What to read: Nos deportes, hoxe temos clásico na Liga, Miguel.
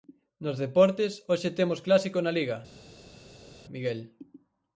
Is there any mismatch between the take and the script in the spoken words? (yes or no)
no